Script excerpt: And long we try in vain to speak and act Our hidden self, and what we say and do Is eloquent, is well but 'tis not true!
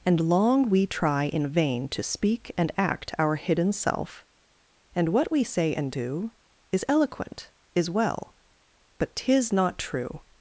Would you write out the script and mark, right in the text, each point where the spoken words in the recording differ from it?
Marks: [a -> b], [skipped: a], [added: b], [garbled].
And long we try in vain to speak and act Our hidden self, and what we say and do Is eloquent, is well but 'tis not true!